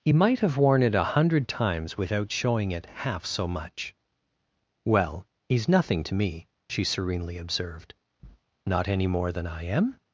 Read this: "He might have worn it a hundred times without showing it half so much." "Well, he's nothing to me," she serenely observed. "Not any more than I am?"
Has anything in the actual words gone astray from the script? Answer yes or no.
no